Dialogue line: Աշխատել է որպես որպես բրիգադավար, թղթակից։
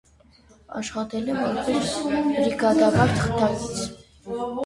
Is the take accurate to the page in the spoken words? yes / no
no